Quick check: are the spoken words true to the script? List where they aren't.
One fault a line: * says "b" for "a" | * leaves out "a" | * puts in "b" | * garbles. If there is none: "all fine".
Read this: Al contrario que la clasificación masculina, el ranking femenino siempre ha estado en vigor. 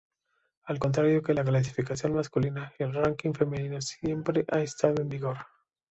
all fine